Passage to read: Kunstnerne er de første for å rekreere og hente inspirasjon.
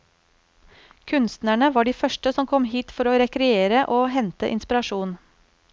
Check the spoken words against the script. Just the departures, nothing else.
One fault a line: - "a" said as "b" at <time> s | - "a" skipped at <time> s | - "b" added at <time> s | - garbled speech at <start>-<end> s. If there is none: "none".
- "er" said as "var" at 1.8 s
- "som kom hit" added at 2.3 s